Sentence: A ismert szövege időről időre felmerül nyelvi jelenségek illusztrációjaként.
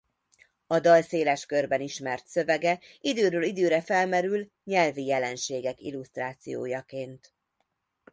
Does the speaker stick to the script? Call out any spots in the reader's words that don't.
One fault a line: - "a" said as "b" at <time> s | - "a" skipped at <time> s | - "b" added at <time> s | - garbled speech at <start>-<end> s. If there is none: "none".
- "dal széles körben" added at 0.8 s